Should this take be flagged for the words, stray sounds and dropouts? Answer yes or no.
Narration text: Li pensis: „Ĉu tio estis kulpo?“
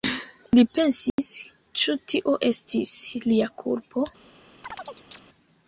yes